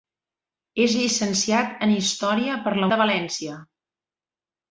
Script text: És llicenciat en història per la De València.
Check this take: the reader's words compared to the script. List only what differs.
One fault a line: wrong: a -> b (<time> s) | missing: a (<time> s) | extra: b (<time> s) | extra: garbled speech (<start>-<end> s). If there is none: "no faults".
no faults